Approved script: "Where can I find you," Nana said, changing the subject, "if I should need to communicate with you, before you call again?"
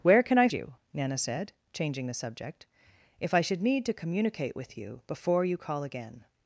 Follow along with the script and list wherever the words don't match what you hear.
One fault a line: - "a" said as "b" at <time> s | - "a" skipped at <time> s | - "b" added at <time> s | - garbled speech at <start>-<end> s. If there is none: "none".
- "find" skipped at 0.5 s